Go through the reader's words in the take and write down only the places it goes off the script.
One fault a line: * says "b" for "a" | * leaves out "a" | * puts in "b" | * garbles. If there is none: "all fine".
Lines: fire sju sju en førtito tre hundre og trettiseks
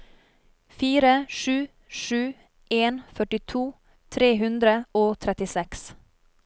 all fine